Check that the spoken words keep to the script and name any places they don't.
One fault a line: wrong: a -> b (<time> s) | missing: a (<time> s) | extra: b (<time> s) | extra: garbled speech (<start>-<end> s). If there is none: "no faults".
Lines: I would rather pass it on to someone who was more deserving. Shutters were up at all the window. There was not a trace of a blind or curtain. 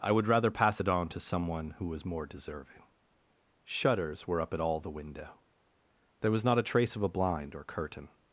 no faults